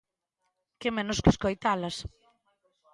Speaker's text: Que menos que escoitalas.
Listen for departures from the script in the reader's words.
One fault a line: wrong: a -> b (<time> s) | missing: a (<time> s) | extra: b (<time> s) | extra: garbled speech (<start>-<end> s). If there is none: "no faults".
no faults